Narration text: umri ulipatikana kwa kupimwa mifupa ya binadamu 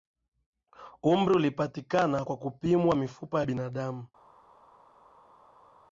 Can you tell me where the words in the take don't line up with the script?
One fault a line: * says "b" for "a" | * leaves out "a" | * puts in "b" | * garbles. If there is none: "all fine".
all fine